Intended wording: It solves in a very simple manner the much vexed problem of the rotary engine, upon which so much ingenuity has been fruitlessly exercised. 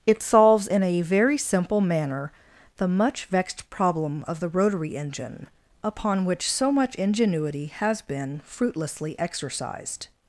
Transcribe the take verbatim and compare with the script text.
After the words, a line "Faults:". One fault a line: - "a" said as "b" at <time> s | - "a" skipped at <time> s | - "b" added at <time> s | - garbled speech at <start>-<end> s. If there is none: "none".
It solves in a very simple manner the much vexed problem of the rotary engine, upon which so much ingenuity has been fruitlessly exercised.
Faults:
none